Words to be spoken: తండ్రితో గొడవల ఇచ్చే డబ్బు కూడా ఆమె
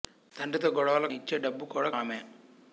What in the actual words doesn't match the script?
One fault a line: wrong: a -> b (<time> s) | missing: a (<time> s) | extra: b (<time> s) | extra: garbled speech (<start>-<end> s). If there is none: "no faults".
no faults